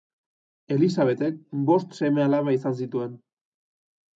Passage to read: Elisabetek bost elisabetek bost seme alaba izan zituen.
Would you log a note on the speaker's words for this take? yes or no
yes